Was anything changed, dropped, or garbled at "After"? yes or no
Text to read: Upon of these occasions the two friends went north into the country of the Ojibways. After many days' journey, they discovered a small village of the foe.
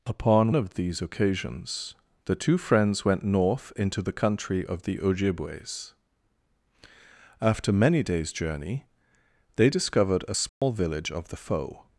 no